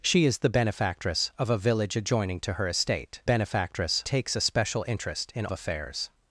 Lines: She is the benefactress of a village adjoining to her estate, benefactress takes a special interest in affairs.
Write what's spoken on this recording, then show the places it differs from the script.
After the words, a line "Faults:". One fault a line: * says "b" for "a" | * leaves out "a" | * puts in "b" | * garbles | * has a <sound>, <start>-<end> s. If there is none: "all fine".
She is the benefactress of a village adjoining to her estate, benefactress takes a special interest in affairs.
Faults:
all fine